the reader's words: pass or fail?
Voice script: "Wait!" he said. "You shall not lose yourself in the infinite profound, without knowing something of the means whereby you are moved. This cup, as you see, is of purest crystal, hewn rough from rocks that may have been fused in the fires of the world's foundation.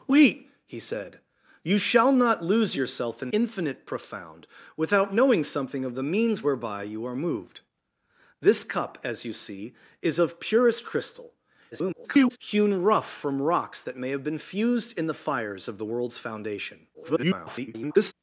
fail